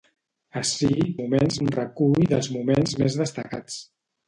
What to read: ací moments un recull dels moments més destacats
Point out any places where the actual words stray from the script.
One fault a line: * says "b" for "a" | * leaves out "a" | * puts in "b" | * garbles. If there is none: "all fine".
all fine